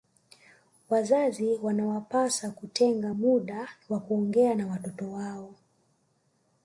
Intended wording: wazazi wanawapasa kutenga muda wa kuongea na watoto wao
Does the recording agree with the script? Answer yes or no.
yes